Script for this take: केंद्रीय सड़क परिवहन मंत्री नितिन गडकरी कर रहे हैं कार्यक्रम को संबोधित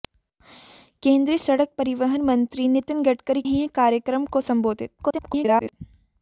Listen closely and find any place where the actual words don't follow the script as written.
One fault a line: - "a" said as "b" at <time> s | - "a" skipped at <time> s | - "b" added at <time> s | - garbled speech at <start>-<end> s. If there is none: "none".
- "कर रहे" skipped at 3.4 s
- garbled speech at 5.0-5.7 s